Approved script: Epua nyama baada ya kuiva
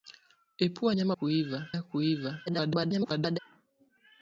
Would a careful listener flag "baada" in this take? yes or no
yes